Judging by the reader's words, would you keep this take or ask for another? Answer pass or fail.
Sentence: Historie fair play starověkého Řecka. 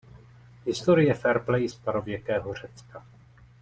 pass